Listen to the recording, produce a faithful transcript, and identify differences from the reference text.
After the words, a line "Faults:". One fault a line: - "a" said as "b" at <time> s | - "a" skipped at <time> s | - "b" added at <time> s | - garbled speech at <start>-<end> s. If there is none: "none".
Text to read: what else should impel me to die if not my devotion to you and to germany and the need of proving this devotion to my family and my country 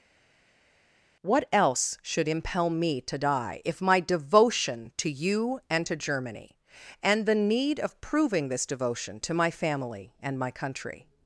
what else should impel me to die if my devotion to you and to germany and the need of proving this devotion to my family and my country
Faults:
- "not" skipped at 3.8 s